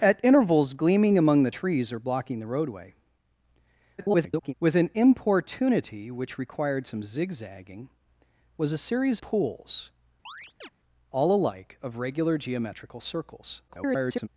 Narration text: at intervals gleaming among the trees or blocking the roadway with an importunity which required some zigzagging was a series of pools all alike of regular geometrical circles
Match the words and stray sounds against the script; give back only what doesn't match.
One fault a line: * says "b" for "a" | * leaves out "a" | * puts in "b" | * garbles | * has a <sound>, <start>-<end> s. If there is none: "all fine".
* garbles
* leaves out "of"
* has a chirp, 10.3-10.7 s
* garbles